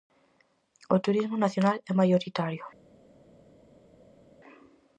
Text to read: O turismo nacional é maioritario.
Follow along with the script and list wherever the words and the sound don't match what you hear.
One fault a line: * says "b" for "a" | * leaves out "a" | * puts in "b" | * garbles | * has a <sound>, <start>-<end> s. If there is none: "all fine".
all fine